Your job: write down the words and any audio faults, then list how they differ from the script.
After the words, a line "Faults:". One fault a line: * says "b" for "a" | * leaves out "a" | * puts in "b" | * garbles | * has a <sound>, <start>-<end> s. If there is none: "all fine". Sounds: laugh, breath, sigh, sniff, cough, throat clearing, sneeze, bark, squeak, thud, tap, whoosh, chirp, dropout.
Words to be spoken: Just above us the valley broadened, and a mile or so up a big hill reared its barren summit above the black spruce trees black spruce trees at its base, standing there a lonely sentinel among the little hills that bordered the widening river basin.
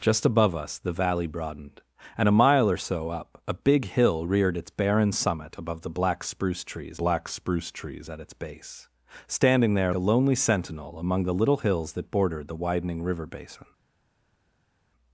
Just above us the valley broadened, and a mile or so up a big hill reared its barren summit above the black spruce trees black spruce trees at its base, standing there a lonely sentinel among the little hills that bordered the widening river basin.
Faults:
all fine